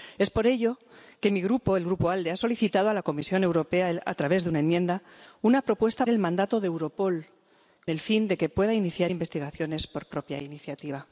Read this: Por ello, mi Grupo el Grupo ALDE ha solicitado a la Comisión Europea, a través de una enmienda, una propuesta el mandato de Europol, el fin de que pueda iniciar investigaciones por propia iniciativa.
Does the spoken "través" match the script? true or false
true